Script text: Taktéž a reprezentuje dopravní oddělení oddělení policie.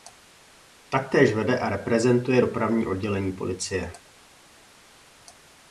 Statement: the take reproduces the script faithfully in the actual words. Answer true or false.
false